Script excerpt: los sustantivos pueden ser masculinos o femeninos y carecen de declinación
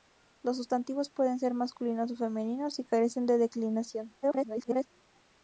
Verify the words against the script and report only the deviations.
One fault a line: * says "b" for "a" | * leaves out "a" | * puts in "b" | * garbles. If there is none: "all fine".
* garbles